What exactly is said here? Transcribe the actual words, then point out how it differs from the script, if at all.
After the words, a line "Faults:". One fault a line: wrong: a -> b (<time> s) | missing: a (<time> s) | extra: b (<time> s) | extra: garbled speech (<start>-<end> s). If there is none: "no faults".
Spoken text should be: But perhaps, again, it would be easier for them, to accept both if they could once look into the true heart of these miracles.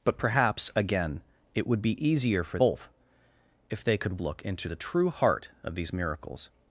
But perhaps, again, it would be easier for both if they could look into the true heart of these miracles.
Faults:
missing: them to accept (2.6 s)
missing: once (4.2 s)